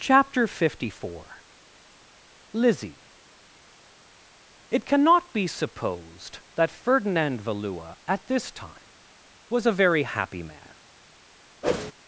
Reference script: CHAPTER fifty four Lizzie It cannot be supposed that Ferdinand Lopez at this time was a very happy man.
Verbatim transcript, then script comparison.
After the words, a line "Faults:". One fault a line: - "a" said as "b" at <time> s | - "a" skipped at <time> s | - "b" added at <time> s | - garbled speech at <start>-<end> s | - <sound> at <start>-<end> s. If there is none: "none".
CHAPTER fifty four Lizzie It cannot be supposed that Ferdinand Valua at this time was a very happy man.
Faults:
- "Lopez" said as "Valua" at 7.4 s
- whoosh at 11.6-11.9 s